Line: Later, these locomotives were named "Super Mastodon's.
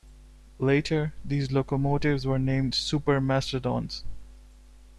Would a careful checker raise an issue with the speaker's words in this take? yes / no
no